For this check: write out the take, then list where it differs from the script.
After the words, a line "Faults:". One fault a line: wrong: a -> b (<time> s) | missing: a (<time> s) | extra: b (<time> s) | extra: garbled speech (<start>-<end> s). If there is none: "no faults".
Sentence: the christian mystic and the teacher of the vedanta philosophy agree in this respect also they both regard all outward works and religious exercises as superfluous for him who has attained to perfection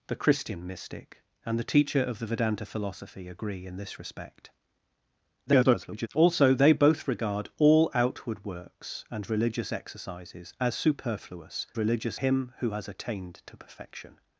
the christian mystic and the teacher of the vedanta philosophy agree in this respect [garbled] also they both regard all outward works and religious exercises as superfluous religious him who has attained to perfection
Faults:
extra: garbled speech (5.5-6.1 s)
wrong: for -> religious (11.8 s)